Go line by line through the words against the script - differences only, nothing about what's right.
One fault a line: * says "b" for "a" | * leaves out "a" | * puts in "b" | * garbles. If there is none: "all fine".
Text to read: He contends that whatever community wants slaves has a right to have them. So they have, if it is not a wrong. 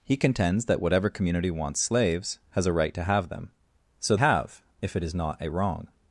* leaves out "they"